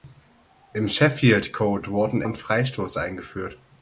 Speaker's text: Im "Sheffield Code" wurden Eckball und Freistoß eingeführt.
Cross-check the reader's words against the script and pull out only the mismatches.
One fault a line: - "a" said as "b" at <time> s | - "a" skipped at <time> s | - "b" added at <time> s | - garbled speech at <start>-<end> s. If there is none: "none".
- "Eckball" skipped at 2.2 s